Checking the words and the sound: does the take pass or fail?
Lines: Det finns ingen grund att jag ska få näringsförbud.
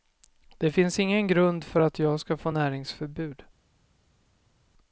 fail